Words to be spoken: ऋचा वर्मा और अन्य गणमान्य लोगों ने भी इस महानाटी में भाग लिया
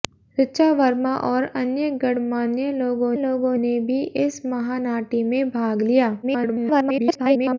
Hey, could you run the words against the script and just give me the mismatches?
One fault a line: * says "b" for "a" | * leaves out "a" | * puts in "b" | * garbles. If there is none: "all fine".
* puts in "लोगों"
* garbles